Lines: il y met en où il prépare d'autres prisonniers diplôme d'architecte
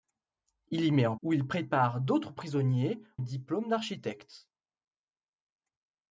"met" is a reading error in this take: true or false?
false